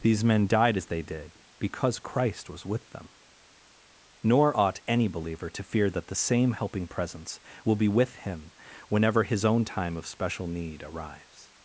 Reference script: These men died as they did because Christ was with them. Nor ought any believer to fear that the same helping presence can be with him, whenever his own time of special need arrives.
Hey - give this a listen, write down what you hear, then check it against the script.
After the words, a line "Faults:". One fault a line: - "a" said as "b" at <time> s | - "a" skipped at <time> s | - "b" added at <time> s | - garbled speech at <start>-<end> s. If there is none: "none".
These men died as they did because Christ was with them. Nor ought any believer to fear that the same helping presence will be with him, whenever his own time of special need arrives.
Faults:
- "can" said as "will" at 7.6 s